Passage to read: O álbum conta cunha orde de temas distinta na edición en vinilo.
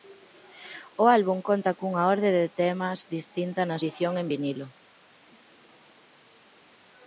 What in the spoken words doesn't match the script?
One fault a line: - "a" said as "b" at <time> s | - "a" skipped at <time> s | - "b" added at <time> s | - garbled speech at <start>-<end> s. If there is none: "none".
none